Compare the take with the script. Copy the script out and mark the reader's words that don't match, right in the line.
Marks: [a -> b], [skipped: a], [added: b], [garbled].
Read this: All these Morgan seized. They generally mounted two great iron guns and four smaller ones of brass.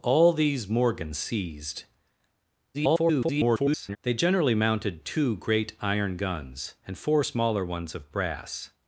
All these Morgan seized. [garbled] They generally mounted two great iron guns and four smaller ones of brass.